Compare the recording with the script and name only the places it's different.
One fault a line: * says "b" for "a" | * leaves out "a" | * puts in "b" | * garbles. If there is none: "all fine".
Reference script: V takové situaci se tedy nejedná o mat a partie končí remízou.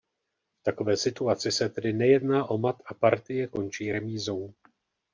all fine